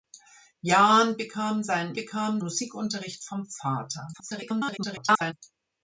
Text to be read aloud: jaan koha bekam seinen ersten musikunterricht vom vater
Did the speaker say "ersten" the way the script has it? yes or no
no